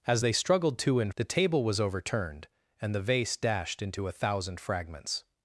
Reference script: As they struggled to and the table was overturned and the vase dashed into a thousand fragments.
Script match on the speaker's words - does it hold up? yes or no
yes